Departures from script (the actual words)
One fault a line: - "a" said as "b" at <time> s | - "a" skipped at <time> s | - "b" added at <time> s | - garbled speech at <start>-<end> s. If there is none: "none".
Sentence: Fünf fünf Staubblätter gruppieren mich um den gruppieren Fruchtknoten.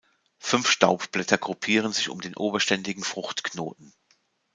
- "fünf" skipped at 0.7 s
- "mich" said as "sich" at 1.9 s
- "gruppieren" said as "oberständigen" at 2.4 s